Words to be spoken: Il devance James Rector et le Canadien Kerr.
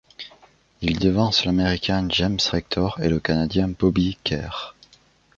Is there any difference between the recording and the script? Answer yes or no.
yes